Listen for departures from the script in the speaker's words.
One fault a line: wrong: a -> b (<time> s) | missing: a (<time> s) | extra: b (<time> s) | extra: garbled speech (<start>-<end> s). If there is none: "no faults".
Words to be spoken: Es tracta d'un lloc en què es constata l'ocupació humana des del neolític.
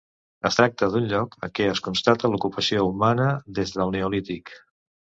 no faults